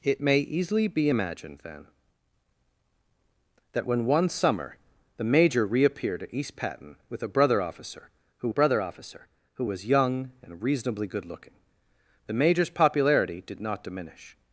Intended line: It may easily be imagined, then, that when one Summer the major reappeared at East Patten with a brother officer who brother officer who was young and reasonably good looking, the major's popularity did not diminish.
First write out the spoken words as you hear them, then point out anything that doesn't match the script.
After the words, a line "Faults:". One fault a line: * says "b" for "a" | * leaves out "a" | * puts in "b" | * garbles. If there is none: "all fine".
It may easily be imagined, then, that when one Summer the major reappeared at East Patten with a brother officer who brother officer who was young and reasonably good looking, the major's popularity did not diminish.
Faults:
all fine